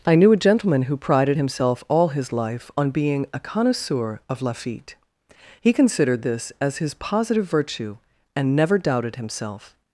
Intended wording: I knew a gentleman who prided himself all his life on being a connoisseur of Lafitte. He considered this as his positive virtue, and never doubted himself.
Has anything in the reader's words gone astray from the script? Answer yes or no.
no